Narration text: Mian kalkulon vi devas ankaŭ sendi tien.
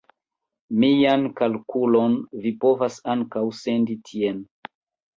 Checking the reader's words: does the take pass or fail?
fail